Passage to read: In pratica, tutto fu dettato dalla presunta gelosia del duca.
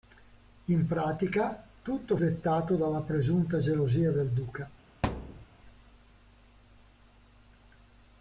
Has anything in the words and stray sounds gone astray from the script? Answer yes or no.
yes